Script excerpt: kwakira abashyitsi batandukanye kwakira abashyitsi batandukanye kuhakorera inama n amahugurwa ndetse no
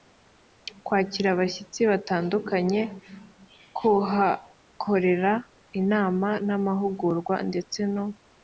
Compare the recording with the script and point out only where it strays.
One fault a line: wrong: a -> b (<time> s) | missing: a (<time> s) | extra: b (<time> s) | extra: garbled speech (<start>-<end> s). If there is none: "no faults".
missing: kwakira abashyitsi batandukanye (2.8 s)